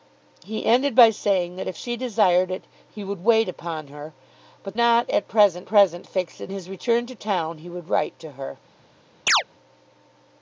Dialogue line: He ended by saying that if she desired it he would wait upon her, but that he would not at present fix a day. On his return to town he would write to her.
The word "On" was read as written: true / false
false